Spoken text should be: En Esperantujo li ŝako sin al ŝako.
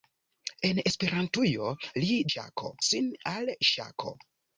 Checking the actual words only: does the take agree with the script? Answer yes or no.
yes